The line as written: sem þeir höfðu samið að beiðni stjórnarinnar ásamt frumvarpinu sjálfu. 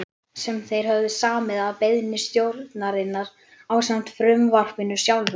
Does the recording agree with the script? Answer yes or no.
yes